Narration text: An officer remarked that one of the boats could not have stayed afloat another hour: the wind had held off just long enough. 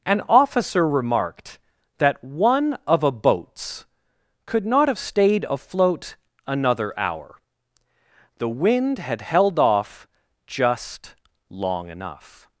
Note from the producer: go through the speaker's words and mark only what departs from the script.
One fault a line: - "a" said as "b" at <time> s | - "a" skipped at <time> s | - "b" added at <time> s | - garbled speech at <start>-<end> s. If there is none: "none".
- "the" said as "a" at 3.0 s